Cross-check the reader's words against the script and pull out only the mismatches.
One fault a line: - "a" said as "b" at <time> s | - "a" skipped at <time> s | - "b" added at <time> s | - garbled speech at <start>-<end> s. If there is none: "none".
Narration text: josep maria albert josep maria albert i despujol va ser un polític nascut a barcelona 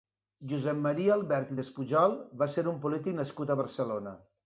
- "josep maria albert" skipped at 1.5 s